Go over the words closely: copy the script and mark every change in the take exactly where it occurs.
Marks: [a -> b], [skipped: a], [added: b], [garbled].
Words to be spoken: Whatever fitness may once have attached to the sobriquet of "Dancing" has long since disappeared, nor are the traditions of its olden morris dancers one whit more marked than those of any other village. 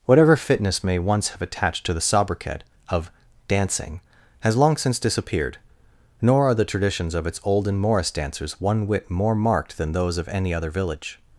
Whatever fitness may once have attached to the sobriquet of "Dancing" has long since disappeared, nor are the traditions of its olden morris dancers one whit more marked than those of any other village.